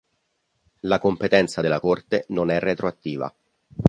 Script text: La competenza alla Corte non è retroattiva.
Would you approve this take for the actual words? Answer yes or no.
no